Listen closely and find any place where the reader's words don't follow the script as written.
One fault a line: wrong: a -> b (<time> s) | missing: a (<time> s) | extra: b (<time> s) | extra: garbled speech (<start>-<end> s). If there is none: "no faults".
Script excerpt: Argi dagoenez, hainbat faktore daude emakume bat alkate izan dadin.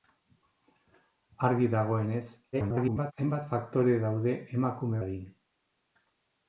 extra: garbled speech (2.5-3.1 s)
missing: bat alkate izan (5.0 s)